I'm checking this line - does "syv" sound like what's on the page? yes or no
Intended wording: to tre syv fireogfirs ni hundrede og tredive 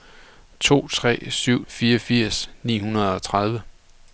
yes